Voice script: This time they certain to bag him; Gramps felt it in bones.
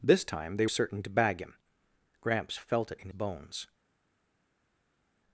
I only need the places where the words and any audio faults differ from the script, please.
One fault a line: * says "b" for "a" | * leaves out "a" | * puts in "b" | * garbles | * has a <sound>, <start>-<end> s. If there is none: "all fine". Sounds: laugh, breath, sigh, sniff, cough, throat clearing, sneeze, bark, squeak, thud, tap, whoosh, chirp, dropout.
all fine